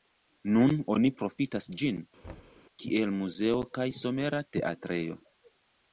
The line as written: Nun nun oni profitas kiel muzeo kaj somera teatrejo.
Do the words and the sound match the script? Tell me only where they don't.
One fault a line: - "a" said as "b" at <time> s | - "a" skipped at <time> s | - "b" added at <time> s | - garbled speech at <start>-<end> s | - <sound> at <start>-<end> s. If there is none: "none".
- "nun" skipped at 0.7 s
- "ĝin" added at 1.8 s
- thud at 2.2-2.6 s